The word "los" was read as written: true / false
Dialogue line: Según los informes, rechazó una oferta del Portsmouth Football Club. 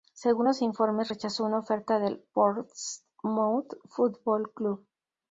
true